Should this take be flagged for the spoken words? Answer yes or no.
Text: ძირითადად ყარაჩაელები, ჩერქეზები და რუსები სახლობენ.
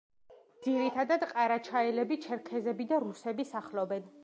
no